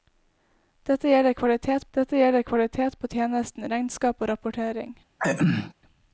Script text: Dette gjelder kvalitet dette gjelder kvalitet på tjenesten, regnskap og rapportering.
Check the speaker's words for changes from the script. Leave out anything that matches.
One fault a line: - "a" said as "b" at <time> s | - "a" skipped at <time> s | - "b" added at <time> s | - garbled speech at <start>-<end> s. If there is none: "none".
none